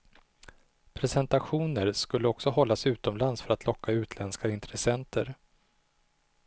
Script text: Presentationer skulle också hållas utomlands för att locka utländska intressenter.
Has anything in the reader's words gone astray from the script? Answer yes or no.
no